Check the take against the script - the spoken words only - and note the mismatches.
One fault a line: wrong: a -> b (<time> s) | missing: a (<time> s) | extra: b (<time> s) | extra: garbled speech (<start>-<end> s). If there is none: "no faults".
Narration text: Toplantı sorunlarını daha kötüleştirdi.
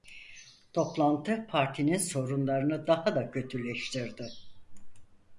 extra: partinin (1.5 s)
extra: da (3.1 s)